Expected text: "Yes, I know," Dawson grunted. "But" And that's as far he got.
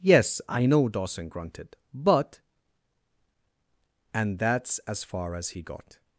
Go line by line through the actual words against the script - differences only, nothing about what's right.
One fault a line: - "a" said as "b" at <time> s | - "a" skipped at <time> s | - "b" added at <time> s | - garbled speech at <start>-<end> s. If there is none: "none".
- "as" added at 5.3 s